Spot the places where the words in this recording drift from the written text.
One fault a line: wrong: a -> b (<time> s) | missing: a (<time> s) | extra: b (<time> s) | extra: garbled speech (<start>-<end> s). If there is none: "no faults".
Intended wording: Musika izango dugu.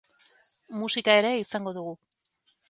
extra: ere (1.2 s)